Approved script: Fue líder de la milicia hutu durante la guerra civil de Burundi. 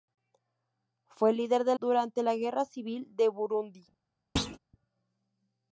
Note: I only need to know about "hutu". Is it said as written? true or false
false